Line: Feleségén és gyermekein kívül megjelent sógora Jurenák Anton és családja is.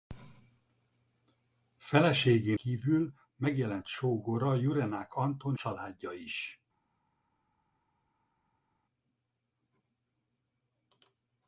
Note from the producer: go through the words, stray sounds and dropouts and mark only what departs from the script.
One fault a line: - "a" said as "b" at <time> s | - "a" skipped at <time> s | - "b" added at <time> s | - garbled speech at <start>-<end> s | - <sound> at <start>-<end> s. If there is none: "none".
- "és gyermekein" skipped at 2.6 s
- "és" skipped at 5.6 s